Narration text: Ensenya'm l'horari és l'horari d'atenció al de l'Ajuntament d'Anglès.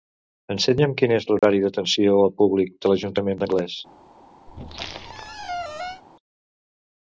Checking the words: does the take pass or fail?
fail